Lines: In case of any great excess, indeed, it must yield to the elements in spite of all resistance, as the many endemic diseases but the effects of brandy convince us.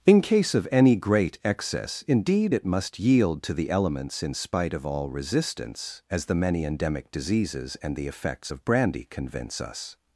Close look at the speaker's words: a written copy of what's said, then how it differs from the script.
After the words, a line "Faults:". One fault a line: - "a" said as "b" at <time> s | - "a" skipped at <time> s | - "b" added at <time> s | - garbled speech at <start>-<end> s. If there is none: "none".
In case of any great excess, indeed, it must yield to the elements in spite of all resistance, as the many endemic diseases and the effects of brandy convince us.
Faults:
- "but" said as "and" at 7.8 s